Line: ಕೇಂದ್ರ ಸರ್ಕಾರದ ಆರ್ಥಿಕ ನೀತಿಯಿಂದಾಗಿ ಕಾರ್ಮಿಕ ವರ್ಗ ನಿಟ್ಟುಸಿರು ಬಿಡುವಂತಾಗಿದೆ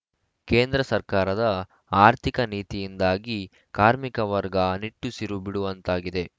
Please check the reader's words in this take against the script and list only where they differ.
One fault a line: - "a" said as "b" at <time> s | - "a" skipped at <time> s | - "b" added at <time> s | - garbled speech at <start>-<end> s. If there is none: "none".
none